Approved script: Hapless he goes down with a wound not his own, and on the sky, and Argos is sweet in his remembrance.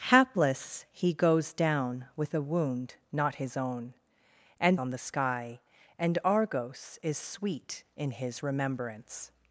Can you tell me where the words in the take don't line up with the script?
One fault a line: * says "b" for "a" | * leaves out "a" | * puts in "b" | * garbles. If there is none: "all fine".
all fine